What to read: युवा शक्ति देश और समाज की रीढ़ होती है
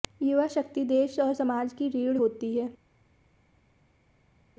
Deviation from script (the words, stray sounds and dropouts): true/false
false